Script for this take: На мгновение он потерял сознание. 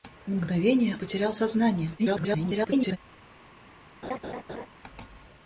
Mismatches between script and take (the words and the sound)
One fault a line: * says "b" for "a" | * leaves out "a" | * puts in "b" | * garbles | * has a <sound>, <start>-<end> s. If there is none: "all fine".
* leaves out "он"
* garbles
* has a laugh, 4.0-4.7 s